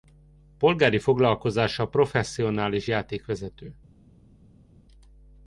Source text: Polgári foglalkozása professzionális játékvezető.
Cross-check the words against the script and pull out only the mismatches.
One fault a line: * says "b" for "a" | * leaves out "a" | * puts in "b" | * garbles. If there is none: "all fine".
all fine